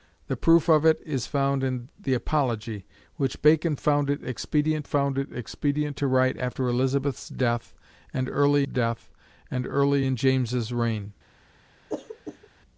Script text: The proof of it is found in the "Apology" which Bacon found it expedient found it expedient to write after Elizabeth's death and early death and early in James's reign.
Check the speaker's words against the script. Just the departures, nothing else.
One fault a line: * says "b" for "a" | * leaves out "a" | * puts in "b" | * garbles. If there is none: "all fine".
all fine